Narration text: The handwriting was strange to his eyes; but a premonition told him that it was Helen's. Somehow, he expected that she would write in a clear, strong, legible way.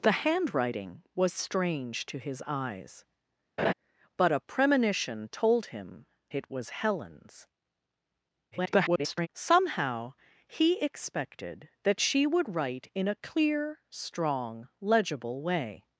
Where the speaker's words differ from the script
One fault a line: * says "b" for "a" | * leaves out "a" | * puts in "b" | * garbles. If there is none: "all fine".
* leaves out "that"
* garbles